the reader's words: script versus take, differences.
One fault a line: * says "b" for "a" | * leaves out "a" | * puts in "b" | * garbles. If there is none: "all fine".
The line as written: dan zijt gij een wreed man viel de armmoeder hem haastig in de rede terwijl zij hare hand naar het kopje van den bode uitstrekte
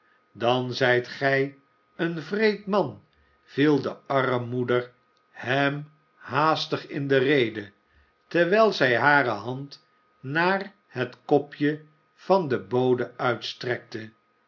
all fine